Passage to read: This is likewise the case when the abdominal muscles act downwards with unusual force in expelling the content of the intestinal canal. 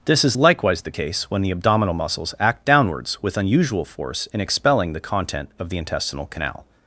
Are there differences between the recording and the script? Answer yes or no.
no